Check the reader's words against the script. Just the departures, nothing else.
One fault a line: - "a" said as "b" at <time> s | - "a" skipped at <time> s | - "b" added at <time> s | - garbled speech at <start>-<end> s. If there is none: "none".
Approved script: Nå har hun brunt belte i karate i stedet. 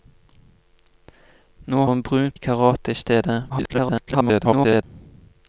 - "har" skipped at 1.9 s
- "belte" skipped at 2.4 s
- garbled speech at 3.5-4.8 s